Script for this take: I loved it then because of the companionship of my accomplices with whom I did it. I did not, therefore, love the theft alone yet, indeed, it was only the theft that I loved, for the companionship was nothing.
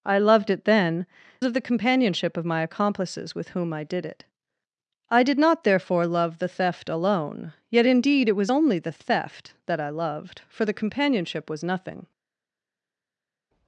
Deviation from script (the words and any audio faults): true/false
true